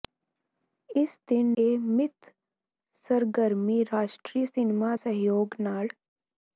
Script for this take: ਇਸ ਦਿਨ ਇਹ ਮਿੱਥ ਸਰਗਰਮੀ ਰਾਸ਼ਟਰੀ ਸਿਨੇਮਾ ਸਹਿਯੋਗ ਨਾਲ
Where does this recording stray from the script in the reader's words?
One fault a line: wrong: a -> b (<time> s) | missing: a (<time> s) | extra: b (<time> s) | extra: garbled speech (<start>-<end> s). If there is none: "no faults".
no faults